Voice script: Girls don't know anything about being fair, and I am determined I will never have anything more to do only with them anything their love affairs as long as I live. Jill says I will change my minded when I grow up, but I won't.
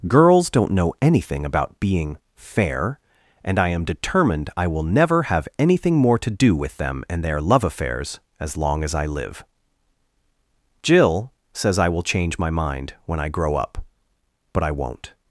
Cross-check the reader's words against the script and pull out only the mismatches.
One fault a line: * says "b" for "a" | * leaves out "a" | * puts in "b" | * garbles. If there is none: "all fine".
* leaves out "only"
* says "and" for "anything"
* says "mind" for "minded"